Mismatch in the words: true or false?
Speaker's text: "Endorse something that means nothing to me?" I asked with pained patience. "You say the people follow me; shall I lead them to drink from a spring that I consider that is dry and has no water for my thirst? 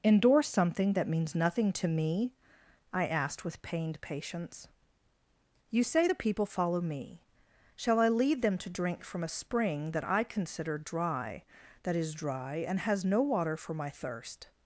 true